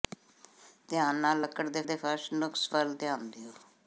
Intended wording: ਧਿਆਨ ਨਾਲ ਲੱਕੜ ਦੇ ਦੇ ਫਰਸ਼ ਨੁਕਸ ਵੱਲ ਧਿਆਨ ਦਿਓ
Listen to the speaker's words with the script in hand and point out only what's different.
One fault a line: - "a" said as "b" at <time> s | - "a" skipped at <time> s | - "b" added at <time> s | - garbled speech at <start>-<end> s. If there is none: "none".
none